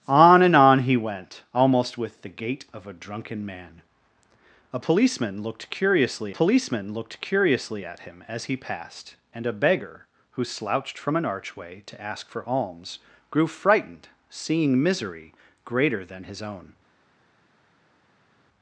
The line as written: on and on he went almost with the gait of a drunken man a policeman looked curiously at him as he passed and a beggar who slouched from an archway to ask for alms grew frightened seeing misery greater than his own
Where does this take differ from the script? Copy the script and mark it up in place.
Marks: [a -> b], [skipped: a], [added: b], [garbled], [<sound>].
on and on he went almost with the gait of a drunken man a policeman looked curiously [added: policeman looked curiously] at him as he passed and a beggar who slouched from an archway to ask for alms grew frightened seeing misery greater than his own